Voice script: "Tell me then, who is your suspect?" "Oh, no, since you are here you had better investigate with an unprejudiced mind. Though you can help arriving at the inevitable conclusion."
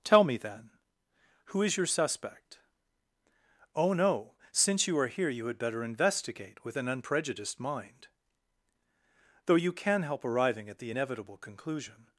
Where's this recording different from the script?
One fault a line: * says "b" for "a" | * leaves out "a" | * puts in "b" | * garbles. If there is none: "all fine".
all fine